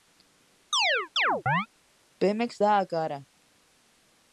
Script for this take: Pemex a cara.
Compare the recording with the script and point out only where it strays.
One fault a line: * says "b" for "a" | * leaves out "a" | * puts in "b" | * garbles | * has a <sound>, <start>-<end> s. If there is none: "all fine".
* has a chirp, 0.7-1.7 s
* puts in "dá"